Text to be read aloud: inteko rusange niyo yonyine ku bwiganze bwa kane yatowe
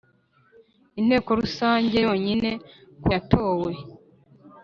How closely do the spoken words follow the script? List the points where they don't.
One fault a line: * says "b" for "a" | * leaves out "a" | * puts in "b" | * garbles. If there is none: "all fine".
* leaves out "niyo"
* leaves out "bwiganze bwa kane"